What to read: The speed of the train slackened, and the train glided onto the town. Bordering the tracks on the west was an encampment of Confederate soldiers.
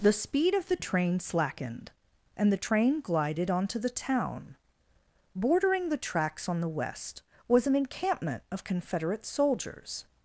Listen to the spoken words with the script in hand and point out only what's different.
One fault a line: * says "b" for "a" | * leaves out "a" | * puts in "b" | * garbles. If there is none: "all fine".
all fine